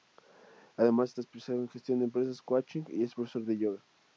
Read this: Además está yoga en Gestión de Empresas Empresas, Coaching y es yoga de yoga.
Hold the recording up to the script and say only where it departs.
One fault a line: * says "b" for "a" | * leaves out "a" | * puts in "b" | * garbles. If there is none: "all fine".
* says "especializado" for "yoga"
* leaves out "Empresas"
* says "profesor" for "yoga"